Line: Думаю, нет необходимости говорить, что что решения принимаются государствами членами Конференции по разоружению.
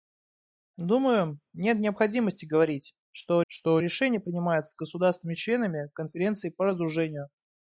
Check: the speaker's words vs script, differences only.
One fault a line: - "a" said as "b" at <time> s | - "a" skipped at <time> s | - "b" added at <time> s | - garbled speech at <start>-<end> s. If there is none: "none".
none